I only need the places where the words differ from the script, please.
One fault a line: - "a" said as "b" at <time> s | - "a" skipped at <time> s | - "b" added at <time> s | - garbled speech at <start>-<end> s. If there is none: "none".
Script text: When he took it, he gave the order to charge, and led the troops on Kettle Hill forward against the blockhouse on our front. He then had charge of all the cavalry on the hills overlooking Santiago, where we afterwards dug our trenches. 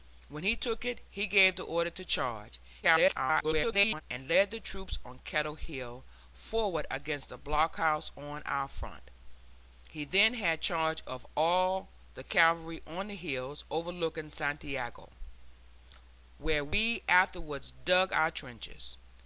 - garbled speech at 2.8-4.0 s